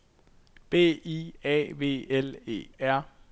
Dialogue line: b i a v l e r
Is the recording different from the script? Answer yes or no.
no